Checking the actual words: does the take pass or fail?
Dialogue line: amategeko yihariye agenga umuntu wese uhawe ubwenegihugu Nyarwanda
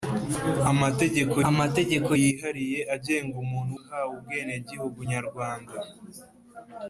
fail